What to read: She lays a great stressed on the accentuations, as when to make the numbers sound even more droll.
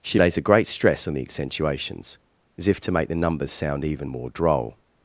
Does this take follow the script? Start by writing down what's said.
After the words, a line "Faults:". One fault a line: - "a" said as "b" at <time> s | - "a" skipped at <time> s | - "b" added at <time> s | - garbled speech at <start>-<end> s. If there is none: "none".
She lays a great stress on the accentuations, as if to make the numbers sound even more droll.
Faults:
- "stressed" said as "stress" at 0.7 s
- "when" said as "if" at 2.7 s